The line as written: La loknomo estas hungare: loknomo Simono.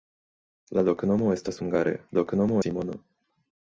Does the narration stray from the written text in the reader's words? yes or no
no